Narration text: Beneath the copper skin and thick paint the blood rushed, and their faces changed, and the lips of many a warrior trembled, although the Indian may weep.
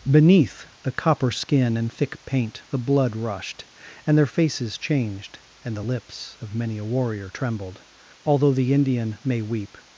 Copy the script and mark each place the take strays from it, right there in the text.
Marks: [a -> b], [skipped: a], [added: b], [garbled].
Beneath the copper skin and thick paint the blood rushed, and their faces changed, and the lips of many a warrior trembled, although the Indian may weep.